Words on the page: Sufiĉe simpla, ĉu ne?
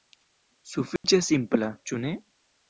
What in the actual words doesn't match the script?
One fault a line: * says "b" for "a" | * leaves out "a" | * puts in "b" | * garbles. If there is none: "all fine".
all fine